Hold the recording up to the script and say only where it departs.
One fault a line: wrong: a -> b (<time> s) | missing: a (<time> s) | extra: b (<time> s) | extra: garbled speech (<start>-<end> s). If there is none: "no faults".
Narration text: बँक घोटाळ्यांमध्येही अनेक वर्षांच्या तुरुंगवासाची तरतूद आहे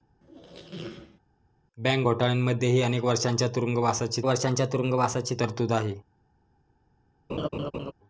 extra: वर्षांच्या तुरुंगवासाची (4.3 s)